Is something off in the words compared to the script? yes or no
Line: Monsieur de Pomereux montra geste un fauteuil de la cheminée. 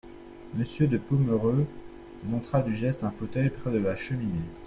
yes